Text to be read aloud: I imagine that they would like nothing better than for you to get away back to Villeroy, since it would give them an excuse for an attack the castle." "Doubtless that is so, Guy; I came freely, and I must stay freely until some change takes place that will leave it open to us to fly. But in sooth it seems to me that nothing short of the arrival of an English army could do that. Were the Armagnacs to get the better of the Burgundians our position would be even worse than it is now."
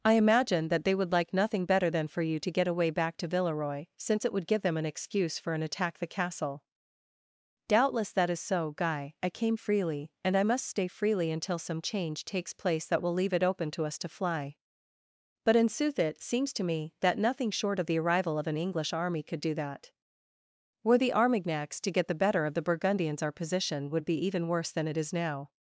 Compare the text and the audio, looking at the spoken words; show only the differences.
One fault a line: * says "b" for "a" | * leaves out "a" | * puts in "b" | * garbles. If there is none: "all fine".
all fine